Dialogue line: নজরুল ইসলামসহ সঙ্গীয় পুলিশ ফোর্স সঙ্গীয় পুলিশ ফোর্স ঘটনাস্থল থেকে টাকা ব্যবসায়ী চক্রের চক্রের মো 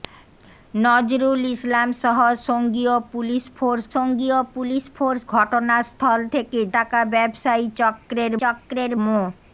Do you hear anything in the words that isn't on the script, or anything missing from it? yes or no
no